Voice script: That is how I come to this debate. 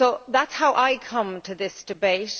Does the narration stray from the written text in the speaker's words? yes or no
no